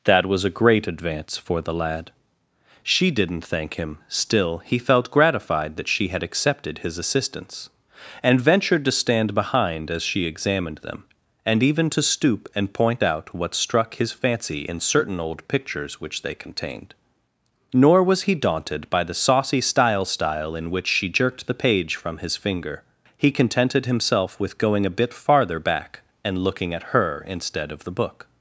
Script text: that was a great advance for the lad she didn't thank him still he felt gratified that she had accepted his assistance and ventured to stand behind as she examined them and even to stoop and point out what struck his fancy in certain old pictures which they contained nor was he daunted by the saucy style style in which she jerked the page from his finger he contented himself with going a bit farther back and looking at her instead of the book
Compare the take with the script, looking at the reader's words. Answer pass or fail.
pass